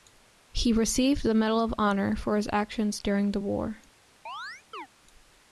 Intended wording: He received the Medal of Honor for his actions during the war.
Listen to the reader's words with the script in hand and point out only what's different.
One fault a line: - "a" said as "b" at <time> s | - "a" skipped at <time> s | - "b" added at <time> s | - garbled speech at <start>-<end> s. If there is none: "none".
none